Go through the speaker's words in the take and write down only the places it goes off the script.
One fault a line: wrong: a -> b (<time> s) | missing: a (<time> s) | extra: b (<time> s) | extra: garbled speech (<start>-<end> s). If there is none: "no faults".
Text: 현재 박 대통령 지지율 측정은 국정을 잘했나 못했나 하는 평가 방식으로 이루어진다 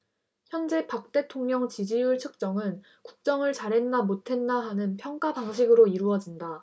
no faults